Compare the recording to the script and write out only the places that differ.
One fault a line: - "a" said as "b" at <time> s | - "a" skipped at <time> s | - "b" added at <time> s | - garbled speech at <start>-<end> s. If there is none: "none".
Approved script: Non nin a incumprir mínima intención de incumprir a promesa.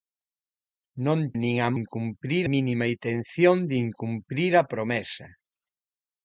none